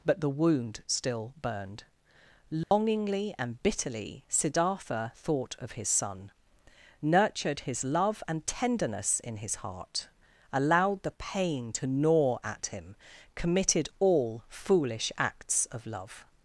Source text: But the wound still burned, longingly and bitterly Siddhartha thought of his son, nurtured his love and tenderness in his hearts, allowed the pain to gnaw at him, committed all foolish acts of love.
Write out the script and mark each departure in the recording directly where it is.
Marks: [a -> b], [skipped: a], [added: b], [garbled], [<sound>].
But the wound still burned, longingly [dropout] and bitterly Siddhartha thought of his son, nurtured his love and tenderness in his [hearts, -> heart] allowed the pain to gnaw at him, committed all foolish acts of love.